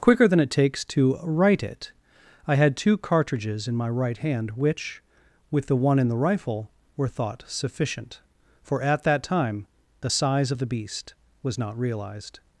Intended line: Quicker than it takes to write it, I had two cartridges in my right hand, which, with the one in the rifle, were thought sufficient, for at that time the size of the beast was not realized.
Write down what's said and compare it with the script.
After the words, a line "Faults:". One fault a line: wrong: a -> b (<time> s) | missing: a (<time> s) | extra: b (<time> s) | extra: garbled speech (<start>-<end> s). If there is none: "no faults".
Quicker than it takes to write it, I had two cartridges in my right hand, which, with the one in the rifle, were thought sufficient, for at that time the size of the beast was not realized.
Faults:
no faults